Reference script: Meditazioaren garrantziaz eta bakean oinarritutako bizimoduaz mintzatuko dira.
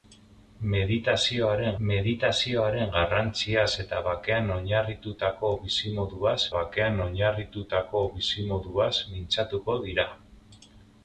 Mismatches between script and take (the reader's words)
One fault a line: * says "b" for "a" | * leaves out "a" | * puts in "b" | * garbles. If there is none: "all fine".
* puts in "meditazioaren"
* puts in "bakean oinarritutako bizimoduaz"